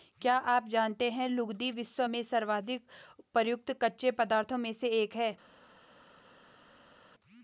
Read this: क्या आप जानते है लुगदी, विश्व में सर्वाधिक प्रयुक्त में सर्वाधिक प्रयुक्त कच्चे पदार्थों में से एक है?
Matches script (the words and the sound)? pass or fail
fail